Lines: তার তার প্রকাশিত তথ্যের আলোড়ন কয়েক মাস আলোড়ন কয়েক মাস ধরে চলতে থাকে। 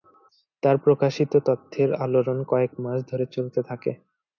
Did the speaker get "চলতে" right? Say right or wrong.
right